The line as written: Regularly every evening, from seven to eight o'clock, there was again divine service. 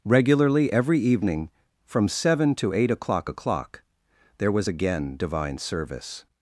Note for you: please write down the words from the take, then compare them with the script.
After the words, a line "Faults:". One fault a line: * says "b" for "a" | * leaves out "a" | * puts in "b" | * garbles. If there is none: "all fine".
Regularly every evening, from seven to eight o'clock o'clock, there was again divine service.
Faults:
* puts in "o'clock"